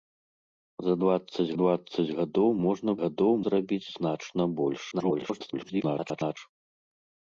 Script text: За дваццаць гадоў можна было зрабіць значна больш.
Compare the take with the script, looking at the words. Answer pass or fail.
fail